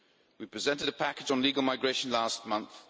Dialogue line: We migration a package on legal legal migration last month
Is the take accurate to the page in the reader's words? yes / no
no